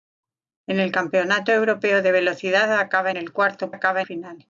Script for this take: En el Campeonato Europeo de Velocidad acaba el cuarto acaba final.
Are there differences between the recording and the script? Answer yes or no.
no